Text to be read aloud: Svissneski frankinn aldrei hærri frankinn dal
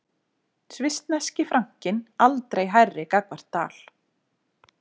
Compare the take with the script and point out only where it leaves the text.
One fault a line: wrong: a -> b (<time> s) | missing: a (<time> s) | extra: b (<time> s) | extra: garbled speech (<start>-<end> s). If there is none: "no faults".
wrong: frankinn -> gagnvart (3.1 s)